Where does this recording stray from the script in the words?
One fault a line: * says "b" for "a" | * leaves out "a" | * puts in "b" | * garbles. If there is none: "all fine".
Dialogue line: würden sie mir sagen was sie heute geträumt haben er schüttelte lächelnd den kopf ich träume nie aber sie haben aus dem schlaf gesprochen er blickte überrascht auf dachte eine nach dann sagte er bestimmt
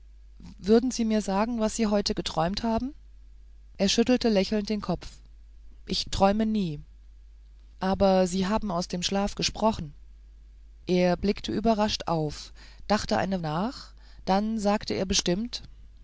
all fine